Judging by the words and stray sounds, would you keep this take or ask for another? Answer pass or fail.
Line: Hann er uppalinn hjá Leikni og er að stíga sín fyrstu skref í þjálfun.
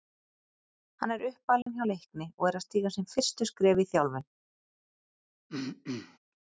fail